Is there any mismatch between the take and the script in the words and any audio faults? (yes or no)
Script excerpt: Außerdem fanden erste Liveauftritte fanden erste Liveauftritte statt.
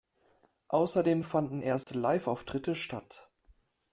yes